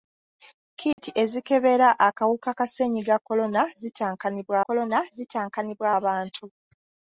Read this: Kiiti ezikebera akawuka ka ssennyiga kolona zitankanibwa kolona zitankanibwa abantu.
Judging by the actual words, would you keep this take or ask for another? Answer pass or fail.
pass